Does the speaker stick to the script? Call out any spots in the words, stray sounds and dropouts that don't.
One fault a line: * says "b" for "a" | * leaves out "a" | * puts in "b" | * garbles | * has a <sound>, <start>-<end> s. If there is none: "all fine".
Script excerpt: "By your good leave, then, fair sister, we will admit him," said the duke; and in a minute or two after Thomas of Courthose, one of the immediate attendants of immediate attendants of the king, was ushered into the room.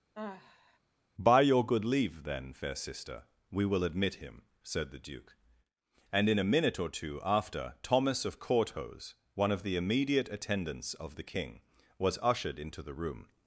* has a sigh, 0.1-0.8 s
* leaves out "immediate attendants of"